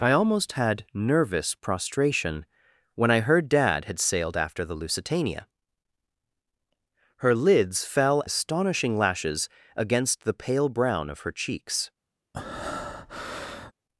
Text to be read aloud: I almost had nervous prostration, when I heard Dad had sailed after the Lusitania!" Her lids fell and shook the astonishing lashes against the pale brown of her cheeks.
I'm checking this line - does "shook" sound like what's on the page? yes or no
no